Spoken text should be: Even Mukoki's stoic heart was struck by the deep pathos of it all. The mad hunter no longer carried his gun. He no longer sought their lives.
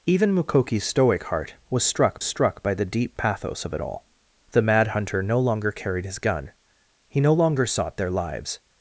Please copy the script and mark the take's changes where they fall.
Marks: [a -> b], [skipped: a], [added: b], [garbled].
Even Mukoki's stoic heart was struck [added: struck] by the deep pathos of it all. The mad hunter no longer carried his gun. He no longer sought their lives.